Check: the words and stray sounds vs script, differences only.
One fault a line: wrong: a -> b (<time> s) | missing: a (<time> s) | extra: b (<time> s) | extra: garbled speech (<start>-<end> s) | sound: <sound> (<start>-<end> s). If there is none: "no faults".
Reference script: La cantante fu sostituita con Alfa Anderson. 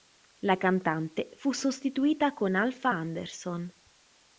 no faults